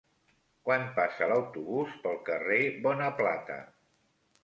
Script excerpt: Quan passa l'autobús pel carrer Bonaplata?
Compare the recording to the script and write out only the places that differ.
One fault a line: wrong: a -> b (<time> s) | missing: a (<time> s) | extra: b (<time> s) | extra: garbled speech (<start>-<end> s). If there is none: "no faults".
no faults